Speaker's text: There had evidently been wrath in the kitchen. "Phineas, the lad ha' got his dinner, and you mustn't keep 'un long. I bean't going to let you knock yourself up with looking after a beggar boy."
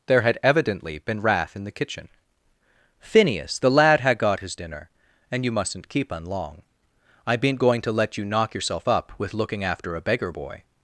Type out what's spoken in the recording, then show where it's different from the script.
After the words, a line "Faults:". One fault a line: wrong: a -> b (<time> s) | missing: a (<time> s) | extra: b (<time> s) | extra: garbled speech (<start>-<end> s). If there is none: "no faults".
There had evidently been wrath in the kitchen. "Phineas, the lad ha' got his dinner, and you mustn't keep 'un long. I bean't going to let you knock yourself up with looking after a beggar boy."
Faults:
no faults